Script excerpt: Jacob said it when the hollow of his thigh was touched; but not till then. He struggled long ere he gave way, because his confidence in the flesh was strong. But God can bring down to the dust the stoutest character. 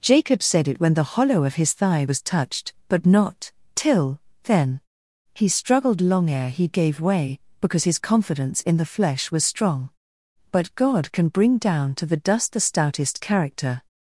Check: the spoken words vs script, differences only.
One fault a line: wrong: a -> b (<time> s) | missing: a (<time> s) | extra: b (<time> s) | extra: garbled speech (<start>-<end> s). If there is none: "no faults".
no faults